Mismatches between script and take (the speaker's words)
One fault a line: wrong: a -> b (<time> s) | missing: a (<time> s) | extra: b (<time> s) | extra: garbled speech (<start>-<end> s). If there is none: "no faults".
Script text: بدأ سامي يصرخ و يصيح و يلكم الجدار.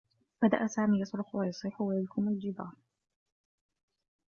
no faults